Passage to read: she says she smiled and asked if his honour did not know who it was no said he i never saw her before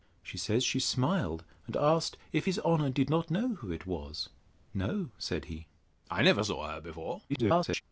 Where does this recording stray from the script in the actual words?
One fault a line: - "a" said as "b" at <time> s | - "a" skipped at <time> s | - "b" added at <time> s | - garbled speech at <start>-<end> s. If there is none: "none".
- garbled speech at 7.3-7.8 s